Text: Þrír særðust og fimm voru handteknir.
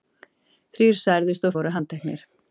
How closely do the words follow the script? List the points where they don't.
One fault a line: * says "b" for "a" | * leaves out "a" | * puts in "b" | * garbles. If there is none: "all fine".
* leaves out "fimm"